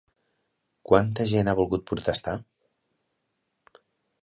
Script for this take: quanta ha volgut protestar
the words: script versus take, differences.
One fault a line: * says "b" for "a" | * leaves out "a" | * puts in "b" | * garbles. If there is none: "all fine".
* puts in "gent"